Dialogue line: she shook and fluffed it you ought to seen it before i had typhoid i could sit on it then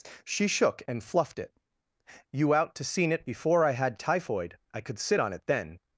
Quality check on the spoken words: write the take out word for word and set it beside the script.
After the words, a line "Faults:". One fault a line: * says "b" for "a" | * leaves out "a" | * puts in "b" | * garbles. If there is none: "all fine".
she shook and fluffed it you out to seen it before i had typhoid i could sit on it then
Faults:
* says "out" for "ought"